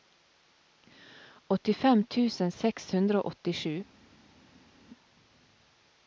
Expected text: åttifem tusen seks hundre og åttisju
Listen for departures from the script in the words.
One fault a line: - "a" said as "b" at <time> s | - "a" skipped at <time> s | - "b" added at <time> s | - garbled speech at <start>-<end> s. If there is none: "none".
none